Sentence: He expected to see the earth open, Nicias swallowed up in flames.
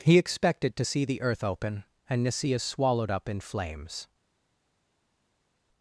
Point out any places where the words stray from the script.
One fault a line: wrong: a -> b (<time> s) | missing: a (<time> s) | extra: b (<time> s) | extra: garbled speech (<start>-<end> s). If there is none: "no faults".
extra: and (2.1 s)